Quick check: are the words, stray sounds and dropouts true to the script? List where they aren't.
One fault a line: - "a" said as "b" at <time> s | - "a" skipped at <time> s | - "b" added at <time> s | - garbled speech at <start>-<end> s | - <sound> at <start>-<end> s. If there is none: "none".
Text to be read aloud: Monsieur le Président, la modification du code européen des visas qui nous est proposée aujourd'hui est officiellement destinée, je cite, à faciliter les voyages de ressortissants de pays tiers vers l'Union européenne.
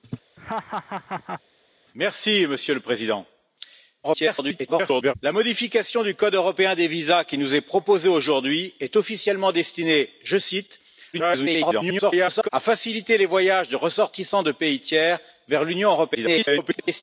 - laugh at 0.4-1.4 s
- garbled speech at 4.0-5.1 s
- garbled speech at 11.1-12.5 s
- garbled speech at 16.1-17.0 s